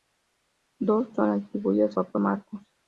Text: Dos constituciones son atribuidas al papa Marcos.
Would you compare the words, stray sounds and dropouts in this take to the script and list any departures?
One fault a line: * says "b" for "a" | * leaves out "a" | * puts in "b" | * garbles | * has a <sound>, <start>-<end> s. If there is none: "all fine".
* leaves out "constituciones"
* leaves out "al"